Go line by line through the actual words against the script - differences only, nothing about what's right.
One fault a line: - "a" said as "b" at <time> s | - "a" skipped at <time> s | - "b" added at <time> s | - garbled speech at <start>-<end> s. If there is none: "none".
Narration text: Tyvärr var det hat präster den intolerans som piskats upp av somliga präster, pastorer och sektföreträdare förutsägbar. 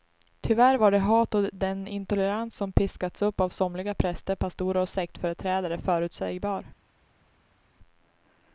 - "präster" said as "och" at 1.3 s